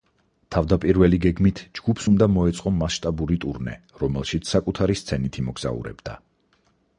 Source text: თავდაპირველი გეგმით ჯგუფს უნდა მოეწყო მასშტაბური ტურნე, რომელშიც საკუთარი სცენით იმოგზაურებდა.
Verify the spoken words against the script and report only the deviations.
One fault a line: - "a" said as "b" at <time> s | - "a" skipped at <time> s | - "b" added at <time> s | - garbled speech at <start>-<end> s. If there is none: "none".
none